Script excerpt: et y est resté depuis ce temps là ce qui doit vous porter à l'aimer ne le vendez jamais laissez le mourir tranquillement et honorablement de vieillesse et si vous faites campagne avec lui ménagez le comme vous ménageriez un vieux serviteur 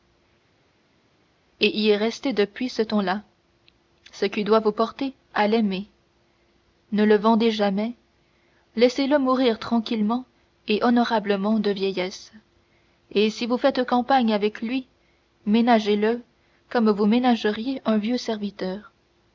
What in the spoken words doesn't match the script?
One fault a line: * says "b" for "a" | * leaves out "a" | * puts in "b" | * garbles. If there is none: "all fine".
all fine